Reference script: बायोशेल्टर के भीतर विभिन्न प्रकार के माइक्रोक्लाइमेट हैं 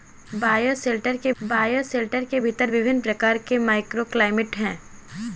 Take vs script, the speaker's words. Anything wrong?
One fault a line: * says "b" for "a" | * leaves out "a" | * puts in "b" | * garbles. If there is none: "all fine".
* puts in "बायोशेल्टर के"